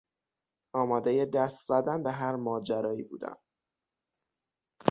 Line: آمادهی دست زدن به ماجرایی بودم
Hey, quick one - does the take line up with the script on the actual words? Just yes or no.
no